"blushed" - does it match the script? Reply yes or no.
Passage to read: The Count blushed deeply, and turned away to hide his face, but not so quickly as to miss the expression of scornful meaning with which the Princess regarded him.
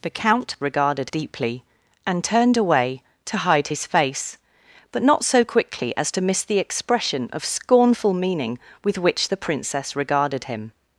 no